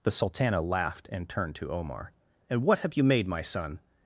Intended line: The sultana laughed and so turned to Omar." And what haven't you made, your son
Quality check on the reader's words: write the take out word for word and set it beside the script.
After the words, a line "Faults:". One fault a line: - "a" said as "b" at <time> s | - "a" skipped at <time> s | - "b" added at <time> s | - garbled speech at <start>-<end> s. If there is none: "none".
The sultana laughed and turned to Omar." And what have you made, my son
Faults:
- "so" skipped at 1.3 s
- "haven't" said as "have" at 2.8 s
- "your" said as "my" at 3.3 s